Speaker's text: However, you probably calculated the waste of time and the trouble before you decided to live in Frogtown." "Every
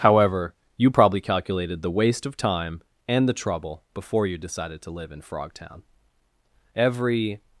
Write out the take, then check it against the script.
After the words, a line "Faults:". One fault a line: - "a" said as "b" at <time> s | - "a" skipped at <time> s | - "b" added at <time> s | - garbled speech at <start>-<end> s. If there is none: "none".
However, you probably calculated the waste of time and the trouble before you decided to live in Frogtown." "Every
Faults:
none